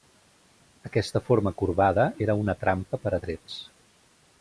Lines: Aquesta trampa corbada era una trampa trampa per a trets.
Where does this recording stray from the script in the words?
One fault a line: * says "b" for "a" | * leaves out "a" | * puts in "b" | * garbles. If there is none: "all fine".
* says "forma" for "trampa"
* leaves out "trampa"